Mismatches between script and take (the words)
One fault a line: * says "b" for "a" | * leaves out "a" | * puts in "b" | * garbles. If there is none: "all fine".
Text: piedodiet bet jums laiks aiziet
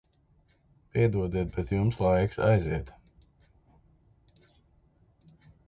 all fine